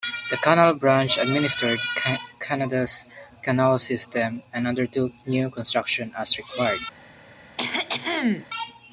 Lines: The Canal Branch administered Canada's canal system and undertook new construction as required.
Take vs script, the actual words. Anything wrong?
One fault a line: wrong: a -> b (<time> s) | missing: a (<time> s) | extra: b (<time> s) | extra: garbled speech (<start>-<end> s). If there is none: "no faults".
no faults